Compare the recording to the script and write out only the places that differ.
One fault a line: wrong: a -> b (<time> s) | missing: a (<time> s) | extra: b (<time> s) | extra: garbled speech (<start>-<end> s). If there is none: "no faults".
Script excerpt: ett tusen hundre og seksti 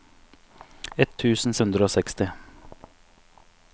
no faults